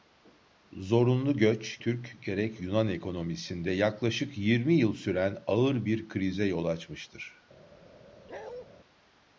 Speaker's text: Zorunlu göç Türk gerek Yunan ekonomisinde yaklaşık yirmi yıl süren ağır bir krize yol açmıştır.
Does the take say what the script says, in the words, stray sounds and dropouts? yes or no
no